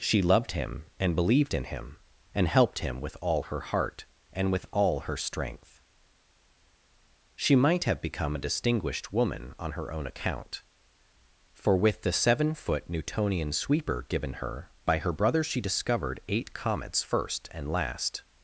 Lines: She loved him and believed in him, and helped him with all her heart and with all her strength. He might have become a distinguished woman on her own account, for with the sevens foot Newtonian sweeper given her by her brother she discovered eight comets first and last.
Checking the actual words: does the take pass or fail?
fail